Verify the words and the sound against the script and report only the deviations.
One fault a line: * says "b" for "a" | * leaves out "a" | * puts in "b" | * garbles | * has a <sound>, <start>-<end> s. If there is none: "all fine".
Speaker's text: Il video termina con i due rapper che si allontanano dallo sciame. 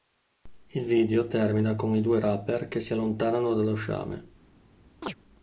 * has a chirp, 5.0-5.2 s